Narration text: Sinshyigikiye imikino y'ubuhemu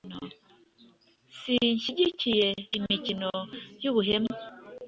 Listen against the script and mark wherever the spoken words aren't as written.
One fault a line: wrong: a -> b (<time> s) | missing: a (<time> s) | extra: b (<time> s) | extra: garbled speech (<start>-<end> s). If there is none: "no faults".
no faults